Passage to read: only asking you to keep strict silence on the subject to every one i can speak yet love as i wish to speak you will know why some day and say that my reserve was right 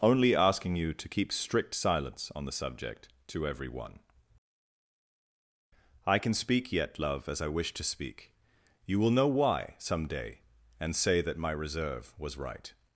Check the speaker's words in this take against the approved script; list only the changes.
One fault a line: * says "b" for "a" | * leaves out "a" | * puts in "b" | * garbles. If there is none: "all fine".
all fine